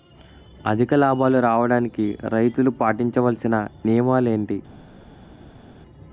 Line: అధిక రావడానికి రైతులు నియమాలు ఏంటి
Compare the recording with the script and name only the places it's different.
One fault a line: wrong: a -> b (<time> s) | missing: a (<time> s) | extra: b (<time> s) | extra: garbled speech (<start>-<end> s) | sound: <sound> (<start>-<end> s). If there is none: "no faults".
extra: లాభాలు (0.9 s)
extra: పాటించవలిసిన (2.8 s)